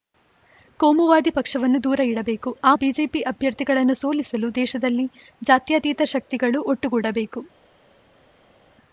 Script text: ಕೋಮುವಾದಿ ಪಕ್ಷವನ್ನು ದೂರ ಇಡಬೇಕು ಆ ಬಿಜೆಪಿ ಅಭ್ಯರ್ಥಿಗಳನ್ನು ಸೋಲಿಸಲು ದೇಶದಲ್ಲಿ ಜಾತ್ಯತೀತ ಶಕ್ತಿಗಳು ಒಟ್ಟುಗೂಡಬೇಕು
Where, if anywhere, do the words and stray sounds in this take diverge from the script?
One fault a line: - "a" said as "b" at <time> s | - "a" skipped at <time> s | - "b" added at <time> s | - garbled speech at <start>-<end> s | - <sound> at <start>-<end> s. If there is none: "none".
none